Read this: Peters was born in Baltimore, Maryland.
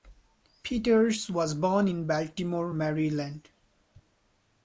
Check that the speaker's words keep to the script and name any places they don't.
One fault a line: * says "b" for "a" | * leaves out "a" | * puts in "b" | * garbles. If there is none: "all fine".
all fine